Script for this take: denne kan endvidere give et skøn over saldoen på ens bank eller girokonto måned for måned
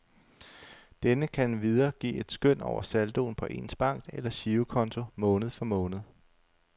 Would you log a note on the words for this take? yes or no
no